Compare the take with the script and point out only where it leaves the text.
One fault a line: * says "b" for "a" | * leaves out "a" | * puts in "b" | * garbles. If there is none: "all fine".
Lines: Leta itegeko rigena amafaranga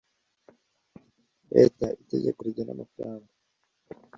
all fine